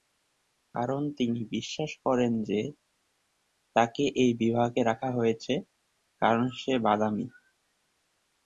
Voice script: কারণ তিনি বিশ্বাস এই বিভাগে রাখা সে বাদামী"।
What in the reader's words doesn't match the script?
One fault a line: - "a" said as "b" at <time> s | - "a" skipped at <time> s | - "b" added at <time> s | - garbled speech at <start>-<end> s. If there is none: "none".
- "করেন যে তাকে" added at 2.0 s
- "হয়েছে কারণ" added at 5.1 s